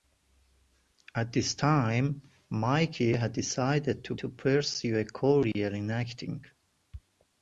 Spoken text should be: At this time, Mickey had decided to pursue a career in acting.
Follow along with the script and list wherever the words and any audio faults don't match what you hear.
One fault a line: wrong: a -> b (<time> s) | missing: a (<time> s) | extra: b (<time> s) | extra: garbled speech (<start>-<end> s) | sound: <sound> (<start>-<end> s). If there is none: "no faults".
extra: to (4.2 s)